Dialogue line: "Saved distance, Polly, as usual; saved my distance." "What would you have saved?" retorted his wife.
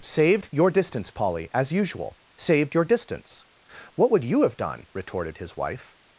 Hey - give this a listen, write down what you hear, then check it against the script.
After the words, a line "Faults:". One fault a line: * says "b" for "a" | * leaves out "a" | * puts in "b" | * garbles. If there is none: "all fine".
"Saved your distance, Polly, as usual; saved your distance." "What would you have done?" retorted his wife.
Faults:
* puts in "your"
* says "your" for "my"
* says "done" for "saved"